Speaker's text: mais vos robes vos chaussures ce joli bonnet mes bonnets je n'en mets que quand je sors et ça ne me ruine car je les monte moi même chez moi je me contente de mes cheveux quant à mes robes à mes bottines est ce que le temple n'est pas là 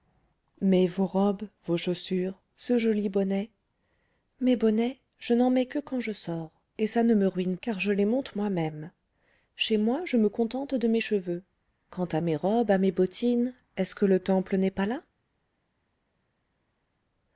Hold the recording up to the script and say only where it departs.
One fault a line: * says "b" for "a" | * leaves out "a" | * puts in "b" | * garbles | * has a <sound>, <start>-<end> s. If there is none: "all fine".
all fine